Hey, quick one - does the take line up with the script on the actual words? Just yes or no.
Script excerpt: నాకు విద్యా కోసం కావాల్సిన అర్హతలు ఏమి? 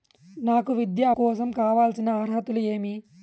yes